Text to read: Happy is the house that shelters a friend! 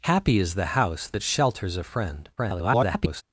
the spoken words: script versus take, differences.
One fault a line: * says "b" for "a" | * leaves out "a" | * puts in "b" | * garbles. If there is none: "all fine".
* garbles